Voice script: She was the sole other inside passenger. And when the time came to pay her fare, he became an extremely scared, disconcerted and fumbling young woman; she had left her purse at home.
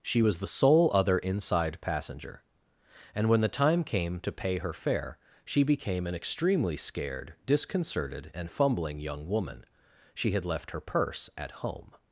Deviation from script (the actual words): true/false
true